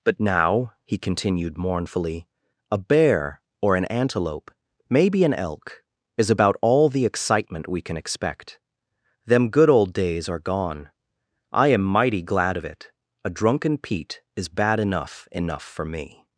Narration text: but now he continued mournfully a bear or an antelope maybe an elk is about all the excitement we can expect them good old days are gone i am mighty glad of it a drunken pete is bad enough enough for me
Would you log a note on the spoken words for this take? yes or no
no